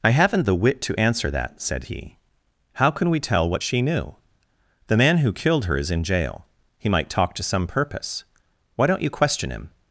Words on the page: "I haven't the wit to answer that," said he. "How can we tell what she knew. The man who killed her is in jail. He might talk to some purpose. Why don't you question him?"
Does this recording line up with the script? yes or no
yes